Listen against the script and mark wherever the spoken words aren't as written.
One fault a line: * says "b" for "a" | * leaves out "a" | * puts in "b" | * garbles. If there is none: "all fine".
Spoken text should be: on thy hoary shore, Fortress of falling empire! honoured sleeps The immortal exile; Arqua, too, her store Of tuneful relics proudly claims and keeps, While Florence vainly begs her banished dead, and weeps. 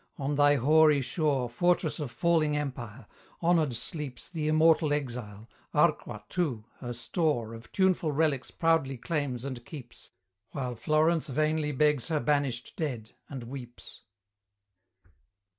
all fine